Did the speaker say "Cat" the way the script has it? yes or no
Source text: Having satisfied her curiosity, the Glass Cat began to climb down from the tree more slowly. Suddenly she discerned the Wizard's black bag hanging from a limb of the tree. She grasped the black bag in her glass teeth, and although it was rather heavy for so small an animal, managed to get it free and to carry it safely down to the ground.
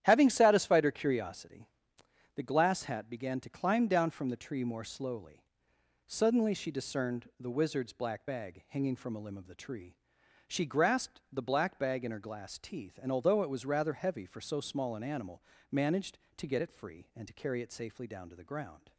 no